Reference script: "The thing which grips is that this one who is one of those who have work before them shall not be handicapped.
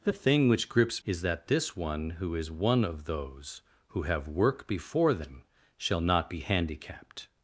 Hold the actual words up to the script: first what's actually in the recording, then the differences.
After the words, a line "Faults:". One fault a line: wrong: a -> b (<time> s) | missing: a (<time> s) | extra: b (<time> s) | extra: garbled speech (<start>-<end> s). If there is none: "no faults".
"The thing which grips is that this one who is one of those who have work before them shall not be handicapped.
Faults:
no faults